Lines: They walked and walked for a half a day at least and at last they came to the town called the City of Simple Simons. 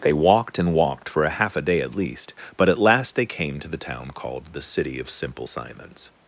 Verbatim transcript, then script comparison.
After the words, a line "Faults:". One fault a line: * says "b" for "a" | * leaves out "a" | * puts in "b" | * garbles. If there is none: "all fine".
They walked and walked for a half a day at least but at last they came to the town called the City of Simple Simons.
Faults:
* says "but" for "and"